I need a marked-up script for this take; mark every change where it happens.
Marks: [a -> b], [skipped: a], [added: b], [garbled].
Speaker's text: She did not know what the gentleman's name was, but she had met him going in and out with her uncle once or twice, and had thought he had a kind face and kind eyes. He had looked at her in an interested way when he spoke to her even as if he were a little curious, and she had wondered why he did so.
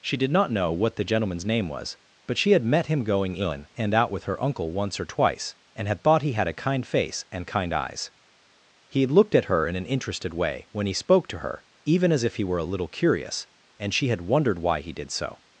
She did not know what the gentleman's name was, but she had met him going in and out with her uncle once or twice, and had thought he had a kind face and kind eyes. He had looked at her in an interested way when he spoke to her even as if he were a little curious, and she had wondered why he did so.